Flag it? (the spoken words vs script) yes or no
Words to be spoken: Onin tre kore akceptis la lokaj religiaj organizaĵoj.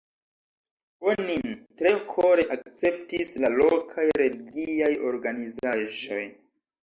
no